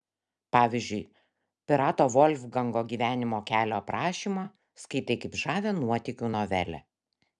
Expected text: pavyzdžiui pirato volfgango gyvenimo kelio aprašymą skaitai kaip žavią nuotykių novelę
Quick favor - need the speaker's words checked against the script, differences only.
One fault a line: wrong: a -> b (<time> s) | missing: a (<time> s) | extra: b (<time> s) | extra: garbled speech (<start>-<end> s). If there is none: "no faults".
no faults